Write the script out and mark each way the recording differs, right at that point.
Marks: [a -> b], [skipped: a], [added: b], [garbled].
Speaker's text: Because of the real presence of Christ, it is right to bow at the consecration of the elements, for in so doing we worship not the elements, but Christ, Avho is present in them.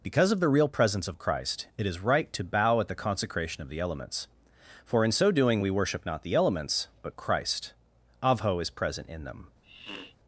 Because of the real presence of Christ, it is right to bow at the consecration of the elements, for in so doing we worship not the elements, but Christ, Avho is present in them.